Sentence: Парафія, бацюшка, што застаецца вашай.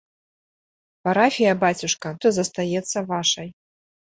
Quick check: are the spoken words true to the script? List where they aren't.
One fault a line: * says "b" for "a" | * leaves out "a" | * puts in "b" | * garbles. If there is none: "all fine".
all fine